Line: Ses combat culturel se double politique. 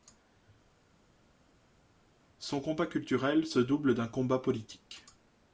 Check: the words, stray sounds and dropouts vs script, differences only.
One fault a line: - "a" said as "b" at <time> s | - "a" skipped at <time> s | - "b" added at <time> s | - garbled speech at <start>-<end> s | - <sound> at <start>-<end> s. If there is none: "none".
- "Ses" said as "Son" at 2.4 s
- "d'un combat" added at 3.9 s